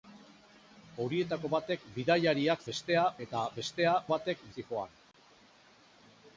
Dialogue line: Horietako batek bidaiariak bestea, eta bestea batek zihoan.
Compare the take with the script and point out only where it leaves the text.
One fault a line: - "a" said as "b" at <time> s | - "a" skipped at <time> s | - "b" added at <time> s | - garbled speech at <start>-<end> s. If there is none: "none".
none